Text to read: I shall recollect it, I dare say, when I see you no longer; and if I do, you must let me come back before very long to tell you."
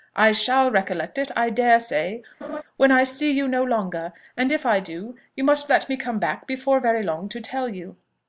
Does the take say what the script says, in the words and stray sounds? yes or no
no